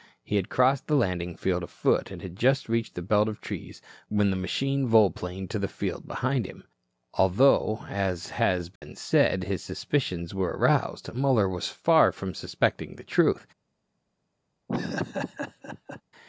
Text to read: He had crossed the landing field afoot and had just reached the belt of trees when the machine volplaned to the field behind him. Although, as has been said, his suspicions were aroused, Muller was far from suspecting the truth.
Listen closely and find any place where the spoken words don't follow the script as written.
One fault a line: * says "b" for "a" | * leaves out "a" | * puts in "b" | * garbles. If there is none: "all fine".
all fine